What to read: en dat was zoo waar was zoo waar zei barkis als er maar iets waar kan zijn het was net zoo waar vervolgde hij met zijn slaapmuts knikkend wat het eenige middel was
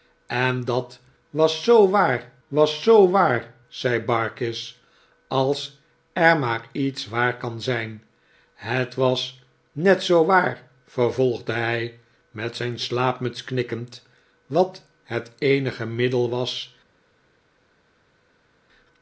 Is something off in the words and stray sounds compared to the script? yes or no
no